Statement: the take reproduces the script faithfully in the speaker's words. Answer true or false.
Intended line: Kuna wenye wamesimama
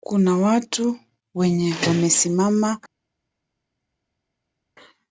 false